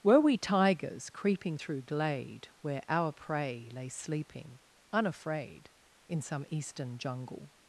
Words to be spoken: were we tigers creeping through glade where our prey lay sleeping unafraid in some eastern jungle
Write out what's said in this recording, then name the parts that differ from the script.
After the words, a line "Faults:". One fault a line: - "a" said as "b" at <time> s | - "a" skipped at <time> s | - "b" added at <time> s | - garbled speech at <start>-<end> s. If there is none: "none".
were we tigers creeping through glade where our prey lay sleeping unafraid in some eastern jungle
Faults:
none